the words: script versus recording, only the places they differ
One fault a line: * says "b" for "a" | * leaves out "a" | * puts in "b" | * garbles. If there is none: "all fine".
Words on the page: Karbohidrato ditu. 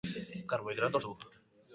all fine